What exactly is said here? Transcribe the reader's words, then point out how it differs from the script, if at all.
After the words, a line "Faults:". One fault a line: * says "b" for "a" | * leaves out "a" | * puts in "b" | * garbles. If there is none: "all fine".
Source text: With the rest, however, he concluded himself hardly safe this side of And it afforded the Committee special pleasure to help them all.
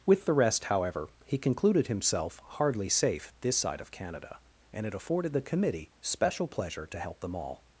With the rest, however, he concluded himself hardly safe this side of Canada, and it afforded the Committee special pleasure to help them all.
Faults:
* puts in "Canada"